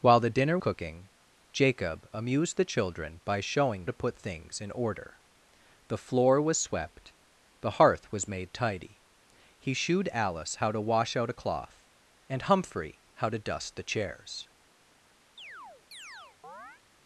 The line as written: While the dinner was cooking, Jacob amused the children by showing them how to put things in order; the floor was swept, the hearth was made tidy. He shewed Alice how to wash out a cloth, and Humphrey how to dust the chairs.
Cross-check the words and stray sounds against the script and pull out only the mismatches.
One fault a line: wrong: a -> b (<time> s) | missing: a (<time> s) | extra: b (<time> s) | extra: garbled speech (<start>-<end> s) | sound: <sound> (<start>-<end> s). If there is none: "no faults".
missing: was (0.6 s)
missing: them how (3.8 s)
sound: chirp (15.4-16.8 s)